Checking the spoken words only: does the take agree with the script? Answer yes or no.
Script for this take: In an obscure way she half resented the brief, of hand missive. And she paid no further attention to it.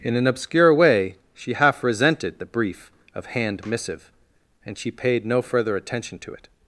yes